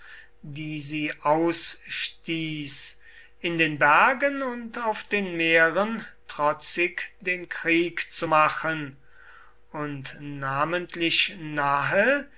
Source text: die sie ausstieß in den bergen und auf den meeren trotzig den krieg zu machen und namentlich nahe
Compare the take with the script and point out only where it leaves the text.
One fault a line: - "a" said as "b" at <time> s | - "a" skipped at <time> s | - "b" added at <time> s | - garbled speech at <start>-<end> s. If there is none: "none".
none